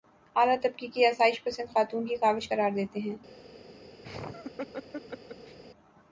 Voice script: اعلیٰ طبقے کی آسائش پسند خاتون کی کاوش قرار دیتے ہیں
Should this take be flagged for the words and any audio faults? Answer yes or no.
yes